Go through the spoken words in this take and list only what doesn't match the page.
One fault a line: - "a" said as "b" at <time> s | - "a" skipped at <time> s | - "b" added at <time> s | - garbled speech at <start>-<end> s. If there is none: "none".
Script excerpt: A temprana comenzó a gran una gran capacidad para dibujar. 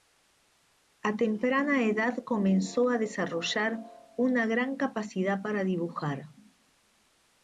- "edad" added at 1.8 s
- "gran" said as "desarrollar" at 3.0 s